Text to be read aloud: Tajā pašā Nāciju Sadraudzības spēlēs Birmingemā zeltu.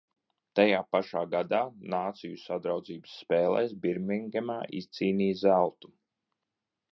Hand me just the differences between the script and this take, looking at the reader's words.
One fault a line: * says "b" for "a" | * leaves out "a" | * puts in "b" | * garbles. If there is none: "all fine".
* puts in "gadā"
* puts in "izcīnīja"